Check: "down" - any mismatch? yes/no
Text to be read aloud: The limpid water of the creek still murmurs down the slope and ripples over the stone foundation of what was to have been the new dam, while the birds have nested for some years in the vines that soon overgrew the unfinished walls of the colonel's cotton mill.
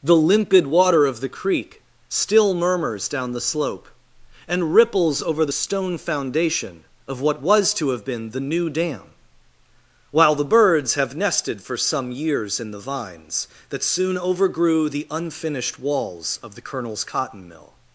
no